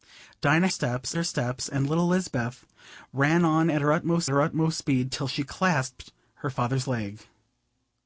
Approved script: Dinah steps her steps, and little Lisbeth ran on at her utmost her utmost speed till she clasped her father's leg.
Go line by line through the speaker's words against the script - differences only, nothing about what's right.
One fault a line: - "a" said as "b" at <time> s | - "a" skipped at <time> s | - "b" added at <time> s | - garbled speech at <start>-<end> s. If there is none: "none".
none